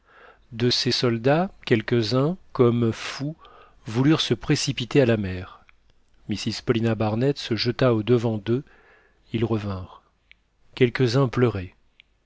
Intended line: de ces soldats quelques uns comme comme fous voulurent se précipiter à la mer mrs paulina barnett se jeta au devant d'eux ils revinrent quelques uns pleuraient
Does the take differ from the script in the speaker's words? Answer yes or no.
yes